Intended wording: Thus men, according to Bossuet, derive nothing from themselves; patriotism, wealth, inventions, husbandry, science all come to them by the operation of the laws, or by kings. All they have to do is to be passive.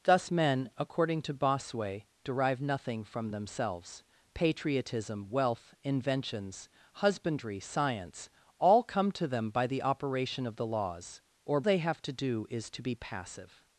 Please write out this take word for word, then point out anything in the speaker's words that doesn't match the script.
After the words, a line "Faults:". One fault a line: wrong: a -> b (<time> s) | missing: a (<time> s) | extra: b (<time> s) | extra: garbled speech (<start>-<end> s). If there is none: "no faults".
Thus men, according to Bossuet, derive nothing from themselves; patriotism, wealth, inventions, husbandry, science all come to them by the operation of the laws, or they have to do is to be passive.
Faults:
missing: by kings All (11.6 s)